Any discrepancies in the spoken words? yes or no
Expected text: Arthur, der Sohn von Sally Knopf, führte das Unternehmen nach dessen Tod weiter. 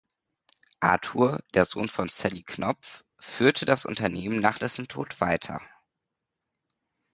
no